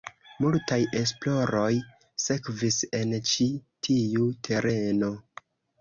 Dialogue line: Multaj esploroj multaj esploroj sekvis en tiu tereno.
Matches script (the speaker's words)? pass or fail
fail